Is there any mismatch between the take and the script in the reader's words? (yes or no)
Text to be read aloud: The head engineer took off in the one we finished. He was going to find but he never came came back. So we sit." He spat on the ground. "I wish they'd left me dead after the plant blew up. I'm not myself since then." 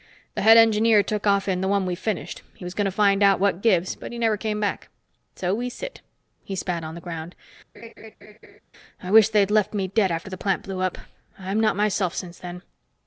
yes